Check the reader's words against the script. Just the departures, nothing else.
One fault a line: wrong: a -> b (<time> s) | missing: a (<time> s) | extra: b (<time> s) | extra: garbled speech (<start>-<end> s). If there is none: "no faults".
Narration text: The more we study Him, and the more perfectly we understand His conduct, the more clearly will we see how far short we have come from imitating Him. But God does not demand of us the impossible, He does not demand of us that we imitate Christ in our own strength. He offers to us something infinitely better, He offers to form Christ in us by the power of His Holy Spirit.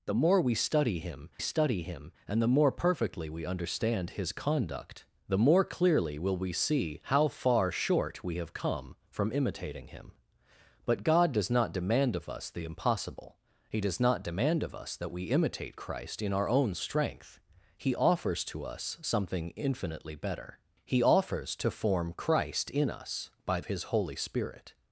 extra: study Him (1.4 s)
missing: the power of (23.6 s)